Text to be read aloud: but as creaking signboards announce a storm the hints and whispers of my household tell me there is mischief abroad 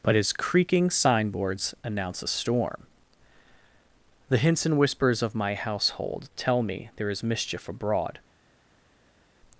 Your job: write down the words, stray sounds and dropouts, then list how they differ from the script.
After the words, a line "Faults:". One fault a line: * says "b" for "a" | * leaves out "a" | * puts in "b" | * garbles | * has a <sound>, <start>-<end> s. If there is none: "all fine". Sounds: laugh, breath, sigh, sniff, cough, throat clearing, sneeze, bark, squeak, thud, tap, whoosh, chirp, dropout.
but his creaking signboards announce a storm the hints and whispers of my household tell me there is mischief abroad
Faults:
* says "his" for "as"